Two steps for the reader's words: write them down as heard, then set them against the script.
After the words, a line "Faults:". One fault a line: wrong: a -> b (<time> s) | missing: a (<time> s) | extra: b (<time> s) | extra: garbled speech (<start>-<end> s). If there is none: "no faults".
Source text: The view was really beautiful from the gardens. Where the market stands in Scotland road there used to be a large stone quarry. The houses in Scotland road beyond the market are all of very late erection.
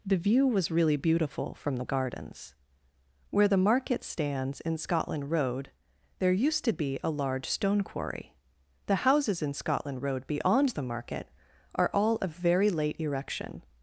The view was really beautiful from the gardens. Where the market stands in Scotland road there used to be a large stone quarry. The houses in Scotland road beyond the market are all of very late erection.
Faults:
no faults